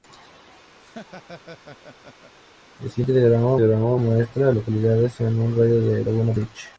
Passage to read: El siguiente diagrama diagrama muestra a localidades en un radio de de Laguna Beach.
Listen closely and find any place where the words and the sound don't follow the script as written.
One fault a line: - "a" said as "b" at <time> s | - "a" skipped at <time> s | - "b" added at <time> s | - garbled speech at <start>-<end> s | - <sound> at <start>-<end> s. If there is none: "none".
- laugh at 0.8-2.3 s